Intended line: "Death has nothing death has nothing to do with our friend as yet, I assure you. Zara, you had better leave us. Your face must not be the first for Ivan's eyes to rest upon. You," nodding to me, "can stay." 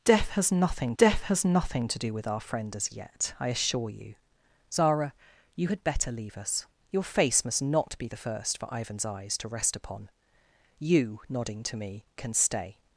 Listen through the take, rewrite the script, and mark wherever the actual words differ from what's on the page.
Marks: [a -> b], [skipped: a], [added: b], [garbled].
"Death has nothing death has nothing to do with our friend as yet, I assure you. Zara, you had better leave us. Your face must not be the first for Ivan's eyes to rest upon. You," nodding to me, "can stay."